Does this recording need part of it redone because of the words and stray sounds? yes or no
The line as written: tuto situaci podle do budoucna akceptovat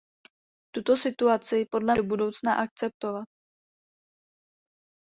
no